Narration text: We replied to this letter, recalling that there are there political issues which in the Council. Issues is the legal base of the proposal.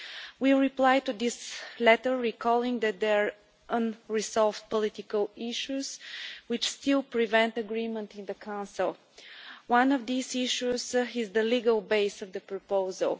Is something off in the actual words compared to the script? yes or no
yes